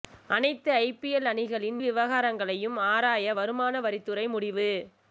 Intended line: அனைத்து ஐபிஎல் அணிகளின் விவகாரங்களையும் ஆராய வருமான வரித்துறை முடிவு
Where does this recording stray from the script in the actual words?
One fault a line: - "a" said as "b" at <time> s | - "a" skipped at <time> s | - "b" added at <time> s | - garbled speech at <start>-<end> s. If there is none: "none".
none